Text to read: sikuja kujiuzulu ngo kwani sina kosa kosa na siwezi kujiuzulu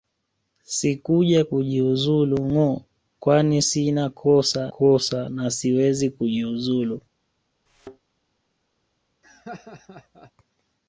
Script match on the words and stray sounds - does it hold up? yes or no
no